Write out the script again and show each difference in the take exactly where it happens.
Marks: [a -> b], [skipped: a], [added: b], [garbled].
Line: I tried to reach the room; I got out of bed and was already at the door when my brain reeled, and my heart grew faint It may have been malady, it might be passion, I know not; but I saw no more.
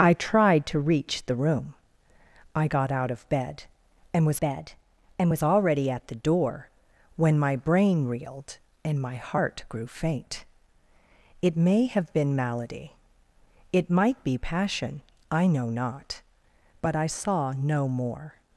I tried to reach the room; I got out of bed and was [added: bed and was] already at the door when my brain reeled, and my heart grew faint It may have been malady, it might be passion, I know not; but I saw no more.